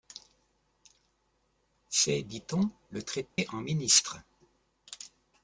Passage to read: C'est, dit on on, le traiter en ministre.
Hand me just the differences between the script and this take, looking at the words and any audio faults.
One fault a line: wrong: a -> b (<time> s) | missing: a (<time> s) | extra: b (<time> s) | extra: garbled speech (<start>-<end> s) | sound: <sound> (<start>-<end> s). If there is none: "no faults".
missing: on (2.7 s)
sound: dropout (3.3-3.4 s)